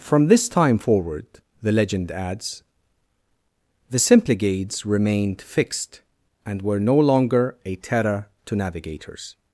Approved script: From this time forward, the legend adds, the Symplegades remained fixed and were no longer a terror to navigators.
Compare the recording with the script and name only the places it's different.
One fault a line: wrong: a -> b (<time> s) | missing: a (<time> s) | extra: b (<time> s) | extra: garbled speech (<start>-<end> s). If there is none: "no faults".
no faults